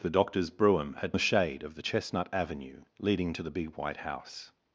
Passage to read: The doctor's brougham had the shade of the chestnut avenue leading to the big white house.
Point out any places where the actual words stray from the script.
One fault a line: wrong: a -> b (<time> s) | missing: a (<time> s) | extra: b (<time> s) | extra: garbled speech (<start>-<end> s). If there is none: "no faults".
no faults